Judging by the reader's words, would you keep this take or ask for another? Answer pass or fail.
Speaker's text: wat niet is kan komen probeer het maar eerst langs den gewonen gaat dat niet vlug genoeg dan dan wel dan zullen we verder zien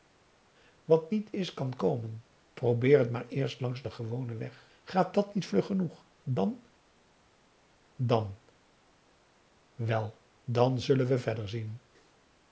fail